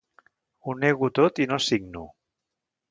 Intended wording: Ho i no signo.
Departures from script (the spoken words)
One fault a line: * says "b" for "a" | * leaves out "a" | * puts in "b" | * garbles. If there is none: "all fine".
* puts in "nego tot"